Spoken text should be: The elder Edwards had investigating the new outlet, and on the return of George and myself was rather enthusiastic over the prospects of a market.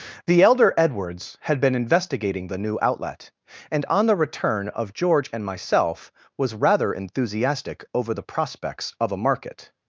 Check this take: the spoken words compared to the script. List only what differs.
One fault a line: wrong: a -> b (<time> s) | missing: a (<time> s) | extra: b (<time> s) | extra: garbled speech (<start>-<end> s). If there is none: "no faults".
extra: been (1.6 s)